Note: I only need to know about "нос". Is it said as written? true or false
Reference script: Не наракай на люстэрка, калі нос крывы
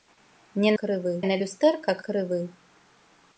false